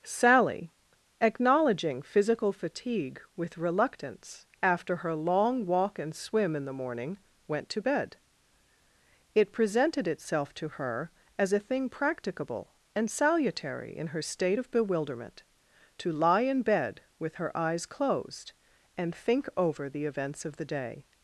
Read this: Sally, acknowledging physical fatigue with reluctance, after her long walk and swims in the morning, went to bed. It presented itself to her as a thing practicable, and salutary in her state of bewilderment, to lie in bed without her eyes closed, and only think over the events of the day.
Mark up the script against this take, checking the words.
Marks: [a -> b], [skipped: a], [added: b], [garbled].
Sally, acknowledging physical fatigue with reluctance, after her long walk and [swims -> swim] in the morning, went to bed. It presented itself to her as a thing practicable, and salutary in her state of bewilderment, to lie in bed [without -> with] her eyes closed, and [skipped: only] think over the events of the day.